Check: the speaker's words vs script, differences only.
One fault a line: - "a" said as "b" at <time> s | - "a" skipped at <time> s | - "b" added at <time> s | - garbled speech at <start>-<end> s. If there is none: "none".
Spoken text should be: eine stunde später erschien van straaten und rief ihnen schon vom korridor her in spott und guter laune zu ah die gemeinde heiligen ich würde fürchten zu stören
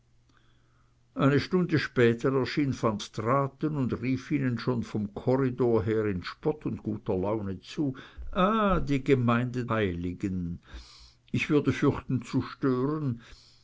none